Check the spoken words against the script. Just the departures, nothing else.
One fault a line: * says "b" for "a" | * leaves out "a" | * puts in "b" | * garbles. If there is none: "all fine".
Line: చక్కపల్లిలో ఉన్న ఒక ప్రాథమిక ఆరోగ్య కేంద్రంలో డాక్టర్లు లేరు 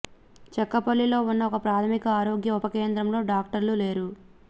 * puts in "ఉప"